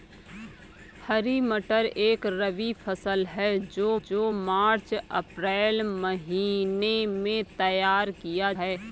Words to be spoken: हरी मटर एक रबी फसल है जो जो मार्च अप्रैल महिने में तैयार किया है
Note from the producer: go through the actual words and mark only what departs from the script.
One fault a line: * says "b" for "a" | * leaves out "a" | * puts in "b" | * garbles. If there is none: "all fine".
all fine